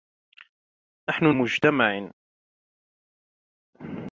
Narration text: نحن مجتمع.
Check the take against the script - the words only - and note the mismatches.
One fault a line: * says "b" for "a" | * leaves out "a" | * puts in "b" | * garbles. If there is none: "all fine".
all fine